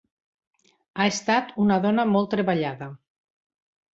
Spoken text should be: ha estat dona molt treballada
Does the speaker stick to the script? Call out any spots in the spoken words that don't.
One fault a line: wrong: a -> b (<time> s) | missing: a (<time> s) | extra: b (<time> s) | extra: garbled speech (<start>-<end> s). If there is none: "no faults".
extra: una (1.6 s)